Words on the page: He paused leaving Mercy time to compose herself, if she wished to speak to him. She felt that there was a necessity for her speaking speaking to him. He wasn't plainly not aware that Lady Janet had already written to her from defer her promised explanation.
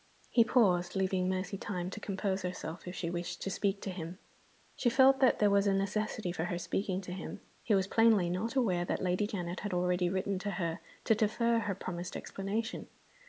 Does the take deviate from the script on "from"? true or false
true